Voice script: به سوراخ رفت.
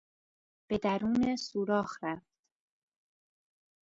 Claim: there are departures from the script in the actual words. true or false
true